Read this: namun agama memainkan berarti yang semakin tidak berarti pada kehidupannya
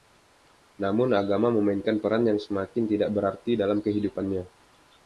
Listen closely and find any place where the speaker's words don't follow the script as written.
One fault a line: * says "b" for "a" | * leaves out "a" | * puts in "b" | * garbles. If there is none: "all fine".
* says "peran" for "berarti"
* says "dalam" for "pada"